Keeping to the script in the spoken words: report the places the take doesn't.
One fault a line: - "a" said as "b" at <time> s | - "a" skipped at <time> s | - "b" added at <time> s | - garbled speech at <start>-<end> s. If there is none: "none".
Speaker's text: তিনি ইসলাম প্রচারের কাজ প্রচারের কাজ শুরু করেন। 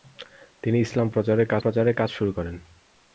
none